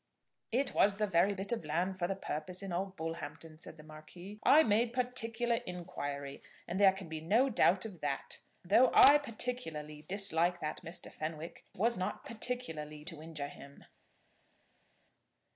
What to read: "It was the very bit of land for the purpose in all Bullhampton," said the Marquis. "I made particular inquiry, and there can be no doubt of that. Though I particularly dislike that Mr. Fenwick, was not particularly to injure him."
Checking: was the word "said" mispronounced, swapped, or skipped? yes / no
no